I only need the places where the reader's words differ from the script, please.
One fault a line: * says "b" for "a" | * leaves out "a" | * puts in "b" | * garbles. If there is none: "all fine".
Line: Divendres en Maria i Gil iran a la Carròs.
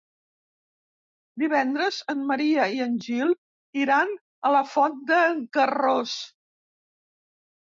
* puts in "en"
* puts in "Font d'en"